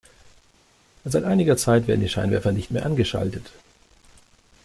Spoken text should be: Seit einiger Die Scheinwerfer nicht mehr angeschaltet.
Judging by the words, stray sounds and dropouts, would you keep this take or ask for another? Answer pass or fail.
fail